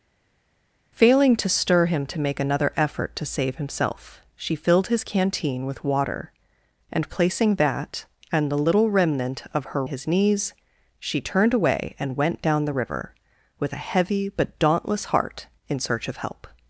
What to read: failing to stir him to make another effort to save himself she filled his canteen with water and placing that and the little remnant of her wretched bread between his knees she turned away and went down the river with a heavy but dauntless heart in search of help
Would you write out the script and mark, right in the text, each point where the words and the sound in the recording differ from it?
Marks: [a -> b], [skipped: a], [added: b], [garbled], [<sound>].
failing to stir him to make another effort to save himself she filled his canteen with water and placing that and the little remnant of her [skipped: wretched bread between] his knees she turned away and went down the river with a heavy but dauntless heart in search of help